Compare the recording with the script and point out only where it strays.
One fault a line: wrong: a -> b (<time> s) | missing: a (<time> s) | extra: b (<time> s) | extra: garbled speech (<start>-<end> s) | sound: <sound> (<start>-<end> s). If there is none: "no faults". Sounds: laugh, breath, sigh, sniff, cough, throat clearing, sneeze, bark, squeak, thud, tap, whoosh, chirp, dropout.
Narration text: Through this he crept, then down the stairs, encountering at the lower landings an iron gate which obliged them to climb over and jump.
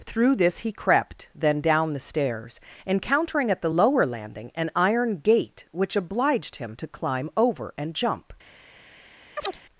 wrong: landings -> landing (4.1 s)
wrong: them -> him (6.6 s)
sound: chirp (9.4-9.6 s)